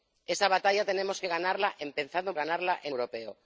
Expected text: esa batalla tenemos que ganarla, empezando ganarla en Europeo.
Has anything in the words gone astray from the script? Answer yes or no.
no